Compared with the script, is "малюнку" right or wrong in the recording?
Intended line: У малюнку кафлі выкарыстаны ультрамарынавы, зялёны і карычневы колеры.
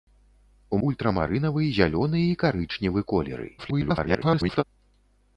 wrong